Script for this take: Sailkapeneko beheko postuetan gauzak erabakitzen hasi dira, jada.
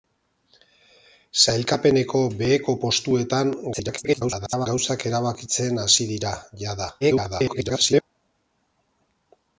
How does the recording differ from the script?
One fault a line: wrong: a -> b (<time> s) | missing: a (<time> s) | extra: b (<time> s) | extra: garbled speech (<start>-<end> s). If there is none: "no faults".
extra: garbled speech (3.7-4.7 s)
extra: garbled speech (7.0-8.0 s)